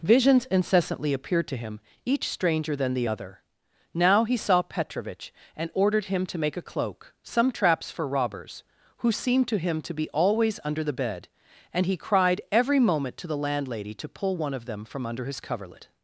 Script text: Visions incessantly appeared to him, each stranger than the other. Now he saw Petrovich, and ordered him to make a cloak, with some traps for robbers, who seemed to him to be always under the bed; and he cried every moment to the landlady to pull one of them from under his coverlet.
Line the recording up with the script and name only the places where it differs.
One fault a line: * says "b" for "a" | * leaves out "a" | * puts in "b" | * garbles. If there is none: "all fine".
* leaves out "with"